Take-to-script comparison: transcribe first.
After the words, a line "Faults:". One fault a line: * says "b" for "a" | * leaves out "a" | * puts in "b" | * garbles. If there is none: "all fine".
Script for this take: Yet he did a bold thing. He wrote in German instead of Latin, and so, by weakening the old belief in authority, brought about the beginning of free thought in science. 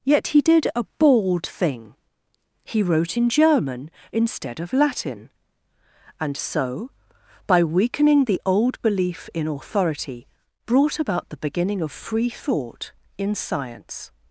Yet he did a bold thing. He wrote in German instead of Latin, and so, by weakening the old belief in authority, brought about the beginning of free thought in science.
Faults:
all fine